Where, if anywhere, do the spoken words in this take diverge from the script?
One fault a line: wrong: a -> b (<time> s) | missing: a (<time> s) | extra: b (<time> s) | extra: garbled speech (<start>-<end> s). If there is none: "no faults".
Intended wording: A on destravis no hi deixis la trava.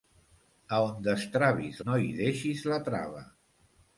no faults